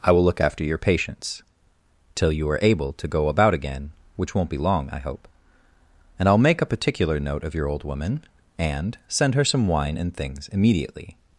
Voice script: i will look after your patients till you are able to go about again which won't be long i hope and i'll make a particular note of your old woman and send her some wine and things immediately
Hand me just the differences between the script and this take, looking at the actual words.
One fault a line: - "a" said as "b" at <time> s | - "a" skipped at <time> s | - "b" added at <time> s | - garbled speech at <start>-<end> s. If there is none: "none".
none